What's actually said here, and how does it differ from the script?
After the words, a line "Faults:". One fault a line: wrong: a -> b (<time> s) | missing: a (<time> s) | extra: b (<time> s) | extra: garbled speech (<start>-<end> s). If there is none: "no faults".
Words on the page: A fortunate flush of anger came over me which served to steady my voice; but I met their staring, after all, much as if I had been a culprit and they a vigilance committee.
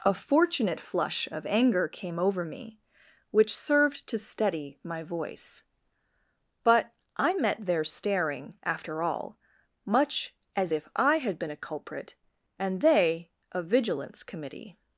A fortunate flush of anger came over me which served to steady my voice; but I met their staring, after all, much as if I had been a culprit and they a vigilance committee.
Faults:
no faults